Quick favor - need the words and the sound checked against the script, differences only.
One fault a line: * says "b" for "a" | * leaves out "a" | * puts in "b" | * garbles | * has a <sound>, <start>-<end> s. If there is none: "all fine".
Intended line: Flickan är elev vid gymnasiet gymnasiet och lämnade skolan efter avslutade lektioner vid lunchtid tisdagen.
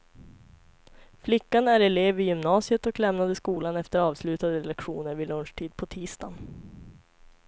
* leaves out "gymnasiet"
* puts in "på"